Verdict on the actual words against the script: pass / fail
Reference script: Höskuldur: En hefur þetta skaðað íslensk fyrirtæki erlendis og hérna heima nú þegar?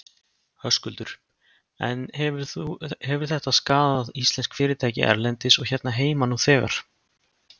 pass